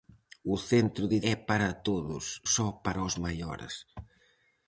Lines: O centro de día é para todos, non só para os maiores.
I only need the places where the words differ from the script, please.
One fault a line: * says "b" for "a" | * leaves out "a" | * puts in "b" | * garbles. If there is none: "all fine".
* leaves out "día"
* leaves out "non"